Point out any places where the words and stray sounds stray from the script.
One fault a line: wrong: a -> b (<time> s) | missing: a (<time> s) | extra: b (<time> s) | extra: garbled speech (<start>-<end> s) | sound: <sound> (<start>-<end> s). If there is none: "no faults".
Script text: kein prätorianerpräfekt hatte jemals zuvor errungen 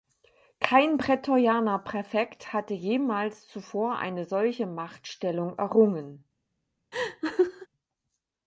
extra: eine solche machtstellung (4.0 s)
sound: laugh (6.9-7.7 s)